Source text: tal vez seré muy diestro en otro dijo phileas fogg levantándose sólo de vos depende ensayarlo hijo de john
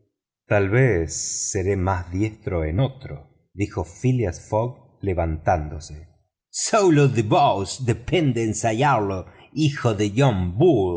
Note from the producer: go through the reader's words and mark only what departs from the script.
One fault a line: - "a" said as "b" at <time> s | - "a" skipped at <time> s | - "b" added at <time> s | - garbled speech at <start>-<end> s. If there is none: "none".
- "muy" said as "más" at 1.8 s